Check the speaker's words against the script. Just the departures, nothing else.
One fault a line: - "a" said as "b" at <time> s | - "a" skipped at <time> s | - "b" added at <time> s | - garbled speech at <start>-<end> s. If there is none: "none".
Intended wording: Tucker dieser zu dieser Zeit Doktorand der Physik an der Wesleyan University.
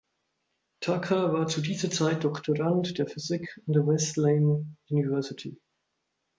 - "dieser" said as "war" at 1.3 s